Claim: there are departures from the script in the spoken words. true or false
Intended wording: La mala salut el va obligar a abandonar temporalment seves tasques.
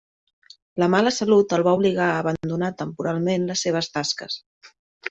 true